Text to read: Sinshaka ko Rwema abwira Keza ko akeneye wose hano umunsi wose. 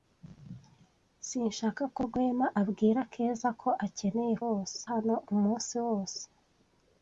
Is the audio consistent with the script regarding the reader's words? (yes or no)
yes